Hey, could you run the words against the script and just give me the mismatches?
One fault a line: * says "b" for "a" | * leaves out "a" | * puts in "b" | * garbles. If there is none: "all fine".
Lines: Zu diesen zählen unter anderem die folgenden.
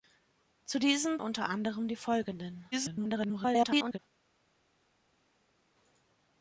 * leaves out "zählen"
* garbles